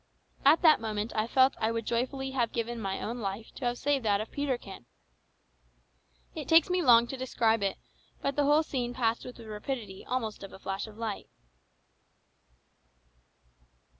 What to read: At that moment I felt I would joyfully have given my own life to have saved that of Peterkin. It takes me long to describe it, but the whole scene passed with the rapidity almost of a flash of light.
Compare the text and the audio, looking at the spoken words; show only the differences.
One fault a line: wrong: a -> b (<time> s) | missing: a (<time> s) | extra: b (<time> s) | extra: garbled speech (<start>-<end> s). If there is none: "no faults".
no faults